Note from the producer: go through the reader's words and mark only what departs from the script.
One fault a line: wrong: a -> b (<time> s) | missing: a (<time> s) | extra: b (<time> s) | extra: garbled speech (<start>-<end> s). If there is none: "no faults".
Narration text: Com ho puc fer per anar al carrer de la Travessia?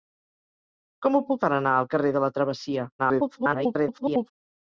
missing: fer (1.4 s)
extra: garbled speech (3.0-4.3 s)